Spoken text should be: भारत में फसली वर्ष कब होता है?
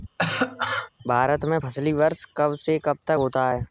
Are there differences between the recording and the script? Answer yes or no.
yes